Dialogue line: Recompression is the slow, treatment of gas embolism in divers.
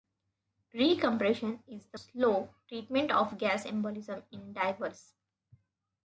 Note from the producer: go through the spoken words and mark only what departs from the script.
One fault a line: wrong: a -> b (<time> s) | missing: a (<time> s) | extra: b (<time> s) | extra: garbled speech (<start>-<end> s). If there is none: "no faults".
no faults